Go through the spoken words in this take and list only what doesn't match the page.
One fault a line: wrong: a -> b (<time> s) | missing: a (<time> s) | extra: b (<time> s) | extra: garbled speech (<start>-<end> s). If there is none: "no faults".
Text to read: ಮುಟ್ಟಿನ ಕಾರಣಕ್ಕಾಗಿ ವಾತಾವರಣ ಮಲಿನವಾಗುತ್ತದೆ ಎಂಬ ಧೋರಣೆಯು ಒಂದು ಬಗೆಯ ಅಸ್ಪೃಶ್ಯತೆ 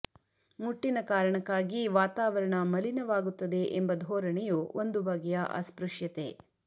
no faults